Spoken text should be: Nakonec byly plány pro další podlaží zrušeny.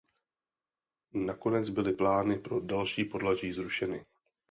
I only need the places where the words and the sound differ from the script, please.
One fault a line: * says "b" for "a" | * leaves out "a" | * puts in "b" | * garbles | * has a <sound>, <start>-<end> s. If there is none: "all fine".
all fine